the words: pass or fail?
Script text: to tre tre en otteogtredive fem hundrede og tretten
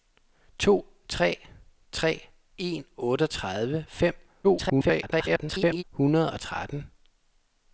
fail